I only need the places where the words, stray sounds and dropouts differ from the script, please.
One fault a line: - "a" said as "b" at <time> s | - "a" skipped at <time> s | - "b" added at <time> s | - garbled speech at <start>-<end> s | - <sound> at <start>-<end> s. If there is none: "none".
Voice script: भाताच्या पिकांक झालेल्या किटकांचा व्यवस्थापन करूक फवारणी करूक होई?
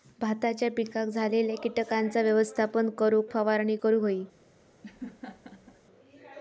- laugh at 4.8-5.8 s